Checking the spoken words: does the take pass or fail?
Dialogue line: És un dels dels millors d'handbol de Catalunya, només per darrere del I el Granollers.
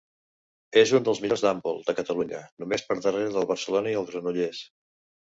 fail